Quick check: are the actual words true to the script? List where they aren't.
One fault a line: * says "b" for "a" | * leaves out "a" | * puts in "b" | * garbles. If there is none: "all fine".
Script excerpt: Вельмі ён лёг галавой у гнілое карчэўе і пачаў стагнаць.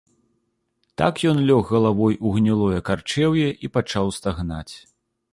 * says "Так" for "Вельмі"